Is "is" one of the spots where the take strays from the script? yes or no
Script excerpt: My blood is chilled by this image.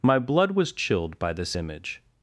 yes